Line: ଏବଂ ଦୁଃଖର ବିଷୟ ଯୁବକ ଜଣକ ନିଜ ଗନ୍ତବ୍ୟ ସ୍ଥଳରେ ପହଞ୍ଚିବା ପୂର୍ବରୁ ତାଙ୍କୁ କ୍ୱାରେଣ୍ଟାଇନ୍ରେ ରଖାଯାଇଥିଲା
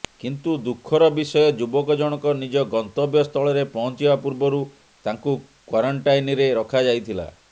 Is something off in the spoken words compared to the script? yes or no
yes